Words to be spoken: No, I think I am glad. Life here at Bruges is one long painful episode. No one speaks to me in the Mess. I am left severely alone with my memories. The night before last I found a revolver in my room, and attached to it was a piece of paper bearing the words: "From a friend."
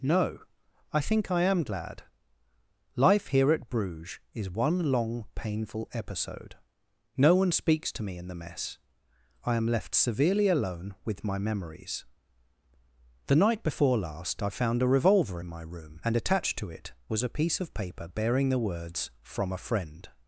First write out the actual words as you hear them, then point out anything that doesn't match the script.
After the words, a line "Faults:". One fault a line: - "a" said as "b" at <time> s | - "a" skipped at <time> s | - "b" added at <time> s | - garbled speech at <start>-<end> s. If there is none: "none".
No, I think I am glad. Life here at Bruges is one long painful episode. No one speaks to me in the Mess. I am left severely alone with my memories. The night before last I found a revolver in my room, and attached to it was a piece of paper bearing the words: "From a friend."
Faults:
none